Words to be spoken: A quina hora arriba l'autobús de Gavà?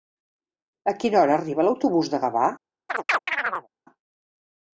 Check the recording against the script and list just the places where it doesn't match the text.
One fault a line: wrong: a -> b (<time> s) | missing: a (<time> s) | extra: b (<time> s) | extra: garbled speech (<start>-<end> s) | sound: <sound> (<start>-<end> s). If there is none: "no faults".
sound: chirp (2.9-3.7 s)